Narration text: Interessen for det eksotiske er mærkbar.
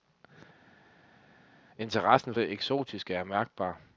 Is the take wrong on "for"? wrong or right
wrong